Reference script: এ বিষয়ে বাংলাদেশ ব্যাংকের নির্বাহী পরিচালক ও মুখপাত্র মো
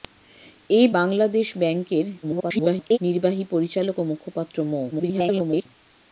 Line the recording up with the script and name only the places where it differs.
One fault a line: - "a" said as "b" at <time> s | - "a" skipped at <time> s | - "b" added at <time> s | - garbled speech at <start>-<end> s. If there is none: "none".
- "বিষয়ে" skipped at 0.9 s
- garbled speech at 2.2-3.0 s
- garbled speech at 4.9-5.7 s